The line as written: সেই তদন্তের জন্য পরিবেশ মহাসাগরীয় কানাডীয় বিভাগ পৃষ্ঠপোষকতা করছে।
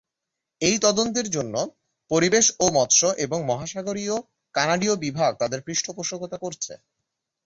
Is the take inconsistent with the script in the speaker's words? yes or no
yes